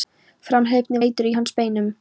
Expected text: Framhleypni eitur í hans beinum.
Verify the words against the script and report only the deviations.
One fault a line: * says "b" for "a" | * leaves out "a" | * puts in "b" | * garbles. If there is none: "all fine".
all fine